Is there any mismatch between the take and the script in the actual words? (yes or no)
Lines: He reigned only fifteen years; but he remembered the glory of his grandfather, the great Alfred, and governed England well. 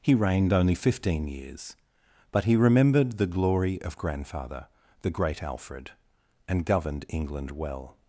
yes